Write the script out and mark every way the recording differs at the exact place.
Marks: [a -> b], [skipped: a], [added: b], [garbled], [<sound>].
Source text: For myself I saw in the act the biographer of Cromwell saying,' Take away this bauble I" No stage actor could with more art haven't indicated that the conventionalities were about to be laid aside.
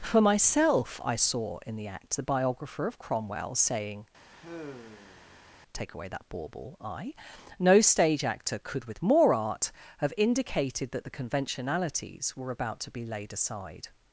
For myself I saw in the act the biographer of Cromwell saying,' [sigh] Take away [this -> that] bauble I" No stage actor could with more art [haven't -> have] indicated that the conventionalities were about to be laid aside.